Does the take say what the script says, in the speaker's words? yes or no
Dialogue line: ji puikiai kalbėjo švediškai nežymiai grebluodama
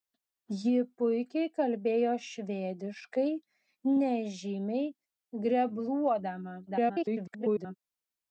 no